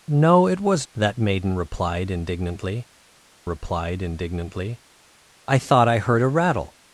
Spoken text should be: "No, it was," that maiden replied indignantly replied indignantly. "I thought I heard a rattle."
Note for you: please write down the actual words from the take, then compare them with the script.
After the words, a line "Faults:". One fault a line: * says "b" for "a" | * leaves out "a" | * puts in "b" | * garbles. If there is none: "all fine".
"No, it was," that maiden replied indignantly replied indignantly. "I thought I heard a rattle."
Faults:
all fine